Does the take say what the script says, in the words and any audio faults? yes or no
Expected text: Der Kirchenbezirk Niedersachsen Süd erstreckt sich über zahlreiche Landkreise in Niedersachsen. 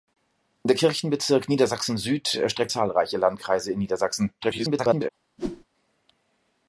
no